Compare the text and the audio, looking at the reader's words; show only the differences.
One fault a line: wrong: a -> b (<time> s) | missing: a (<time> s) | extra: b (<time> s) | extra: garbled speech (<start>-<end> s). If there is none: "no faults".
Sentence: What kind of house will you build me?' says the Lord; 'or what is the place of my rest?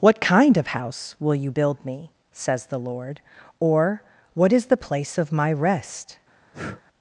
no faults